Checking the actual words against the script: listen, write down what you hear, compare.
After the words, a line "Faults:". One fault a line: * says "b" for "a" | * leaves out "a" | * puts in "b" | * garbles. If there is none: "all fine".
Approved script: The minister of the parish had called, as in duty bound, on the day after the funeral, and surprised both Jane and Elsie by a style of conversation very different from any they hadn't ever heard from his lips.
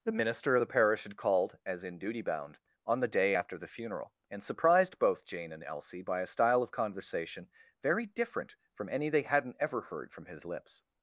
The minister of the parish had called, as in duty bound, on the day after the funeral, and surprised both Jane and Elsie by a style of conversation very different from any they hadn't ever heard from his lips.
Faults:
all fine